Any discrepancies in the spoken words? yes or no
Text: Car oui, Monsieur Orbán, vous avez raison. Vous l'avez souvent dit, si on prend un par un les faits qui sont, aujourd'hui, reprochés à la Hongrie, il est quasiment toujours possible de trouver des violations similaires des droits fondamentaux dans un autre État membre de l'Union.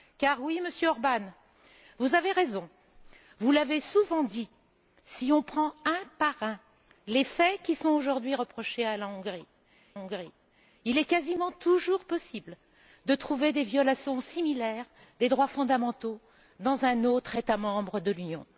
yes